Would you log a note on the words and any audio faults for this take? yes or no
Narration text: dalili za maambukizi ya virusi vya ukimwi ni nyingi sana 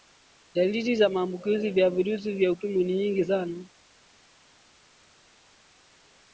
no